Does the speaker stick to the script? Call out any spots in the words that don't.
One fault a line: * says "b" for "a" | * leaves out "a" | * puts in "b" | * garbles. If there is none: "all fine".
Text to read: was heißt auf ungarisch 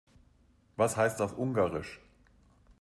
all fine